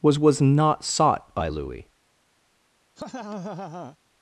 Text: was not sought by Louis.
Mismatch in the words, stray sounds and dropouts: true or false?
true